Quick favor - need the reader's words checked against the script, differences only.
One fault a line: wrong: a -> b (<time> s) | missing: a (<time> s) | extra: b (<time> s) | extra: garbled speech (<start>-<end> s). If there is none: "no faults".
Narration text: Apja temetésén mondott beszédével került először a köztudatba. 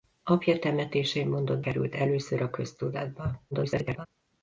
missing: beszédével (1.6 s)
extra: garbled speech (3.5-4.1 s)